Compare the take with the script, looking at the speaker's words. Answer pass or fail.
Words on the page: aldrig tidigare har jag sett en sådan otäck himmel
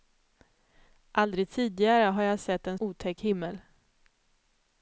fail